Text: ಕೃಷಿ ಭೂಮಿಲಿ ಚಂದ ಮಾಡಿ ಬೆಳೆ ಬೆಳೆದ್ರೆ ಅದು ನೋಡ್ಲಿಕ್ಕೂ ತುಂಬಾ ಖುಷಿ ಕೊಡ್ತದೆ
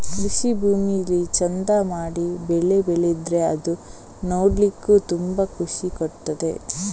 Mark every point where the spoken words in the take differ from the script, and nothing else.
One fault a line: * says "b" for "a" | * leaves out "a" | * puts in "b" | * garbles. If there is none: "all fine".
all fine